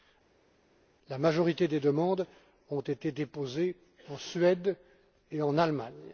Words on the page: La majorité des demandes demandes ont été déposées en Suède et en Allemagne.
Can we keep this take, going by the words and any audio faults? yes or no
no